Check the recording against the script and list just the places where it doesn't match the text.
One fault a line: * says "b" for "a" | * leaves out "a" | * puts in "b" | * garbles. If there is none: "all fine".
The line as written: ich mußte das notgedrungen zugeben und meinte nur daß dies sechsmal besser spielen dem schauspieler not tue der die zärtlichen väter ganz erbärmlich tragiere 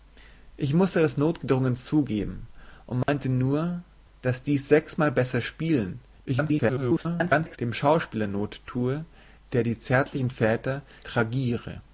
* garbles
* leaves out "ganz erbärmlich"